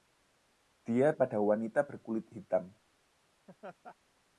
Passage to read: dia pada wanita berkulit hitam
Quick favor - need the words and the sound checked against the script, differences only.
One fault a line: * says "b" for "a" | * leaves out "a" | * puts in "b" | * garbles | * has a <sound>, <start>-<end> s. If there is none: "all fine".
* has a laugh, 3.5-4.0 s